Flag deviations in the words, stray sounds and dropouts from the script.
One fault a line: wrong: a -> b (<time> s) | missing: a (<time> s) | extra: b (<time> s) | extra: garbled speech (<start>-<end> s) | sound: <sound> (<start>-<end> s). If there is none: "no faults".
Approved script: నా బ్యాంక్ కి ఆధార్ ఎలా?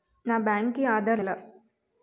no faults